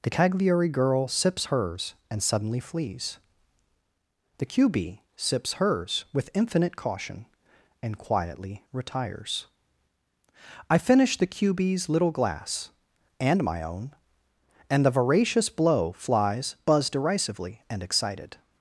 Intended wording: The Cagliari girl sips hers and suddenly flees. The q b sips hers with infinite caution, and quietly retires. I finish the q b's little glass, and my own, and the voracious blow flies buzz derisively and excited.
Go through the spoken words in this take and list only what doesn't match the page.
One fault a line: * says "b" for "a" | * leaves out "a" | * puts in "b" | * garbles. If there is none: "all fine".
all fine